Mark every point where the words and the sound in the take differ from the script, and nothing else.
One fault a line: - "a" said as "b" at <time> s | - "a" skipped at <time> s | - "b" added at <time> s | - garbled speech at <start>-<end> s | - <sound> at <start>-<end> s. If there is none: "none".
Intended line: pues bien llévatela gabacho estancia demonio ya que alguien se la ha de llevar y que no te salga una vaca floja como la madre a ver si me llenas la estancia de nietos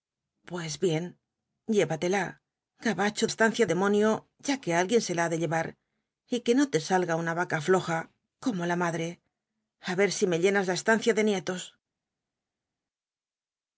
none